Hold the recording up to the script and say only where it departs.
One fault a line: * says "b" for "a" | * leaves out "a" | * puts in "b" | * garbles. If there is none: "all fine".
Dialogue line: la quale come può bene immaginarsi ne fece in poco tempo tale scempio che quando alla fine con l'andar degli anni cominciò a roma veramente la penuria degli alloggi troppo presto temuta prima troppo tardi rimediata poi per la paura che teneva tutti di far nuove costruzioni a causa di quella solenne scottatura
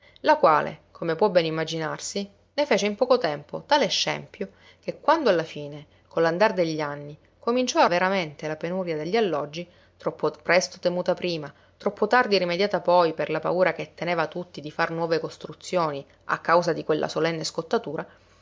* leaves out "roma"